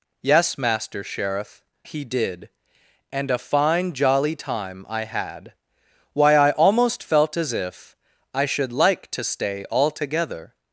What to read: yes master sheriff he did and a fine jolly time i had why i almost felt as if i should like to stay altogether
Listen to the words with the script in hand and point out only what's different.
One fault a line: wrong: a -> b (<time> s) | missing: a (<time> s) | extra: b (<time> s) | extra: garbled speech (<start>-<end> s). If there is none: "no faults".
no faults